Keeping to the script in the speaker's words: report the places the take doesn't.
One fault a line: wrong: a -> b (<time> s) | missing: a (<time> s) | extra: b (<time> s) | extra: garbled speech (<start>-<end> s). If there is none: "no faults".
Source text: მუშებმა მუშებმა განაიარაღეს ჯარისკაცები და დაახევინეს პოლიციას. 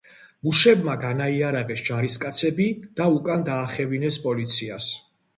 missing: მუშებმა (0.9 s)
extra: უკან (3.1 s)